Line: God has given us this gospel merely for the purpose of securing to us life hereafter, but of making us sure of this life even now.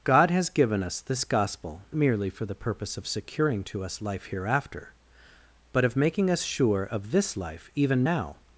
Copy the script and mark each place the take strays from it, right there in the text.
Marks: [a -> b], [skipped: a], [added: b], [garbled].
God has given us this gospel merely for the purpose of securing to us life hereafter, but of making us sure of this life even now.